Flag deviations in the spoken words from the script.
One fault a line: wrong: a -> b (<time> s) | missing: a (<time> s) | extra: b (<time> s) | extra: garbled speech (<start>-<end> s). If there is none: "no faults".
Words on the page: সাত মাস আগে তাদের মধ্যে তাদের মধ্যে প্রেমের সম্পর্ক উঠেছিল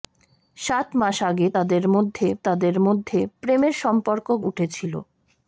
no faults